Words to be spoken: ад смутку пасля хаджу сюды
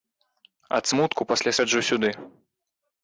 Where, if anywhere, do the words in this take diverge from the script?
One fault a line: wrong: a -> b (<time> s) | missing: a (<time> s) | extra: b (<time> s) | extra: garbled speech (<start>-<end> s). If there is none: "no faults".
no faults